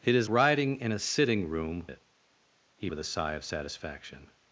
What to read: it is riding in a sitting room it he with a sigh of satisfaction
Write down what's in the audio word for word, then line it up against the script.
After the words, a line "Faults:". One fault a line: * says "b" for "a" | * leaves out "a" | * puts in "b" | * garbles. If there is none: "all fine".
it is riding in a sitting room it he with a sigh of satisfaction
Faults:
all fine